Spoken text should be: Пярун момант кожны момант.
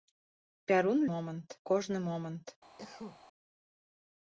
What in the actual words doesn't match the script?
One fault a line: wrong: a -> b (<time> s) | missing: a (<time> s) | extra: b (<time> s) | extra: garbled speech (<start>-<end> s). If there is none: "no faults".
no faults